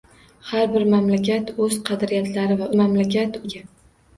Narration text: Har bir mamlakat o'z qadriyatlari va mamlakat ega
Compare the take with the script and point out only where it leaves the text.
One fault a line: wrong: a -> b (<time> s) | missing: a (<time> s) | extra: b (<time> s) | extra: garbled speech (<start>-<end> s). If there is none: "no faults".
no faults